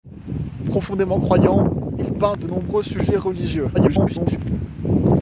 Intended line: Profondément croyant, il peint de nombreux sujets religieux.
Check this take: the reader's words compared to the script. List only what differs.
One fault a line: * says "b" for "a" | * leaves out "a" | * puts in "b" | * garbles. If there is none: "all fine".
* garbles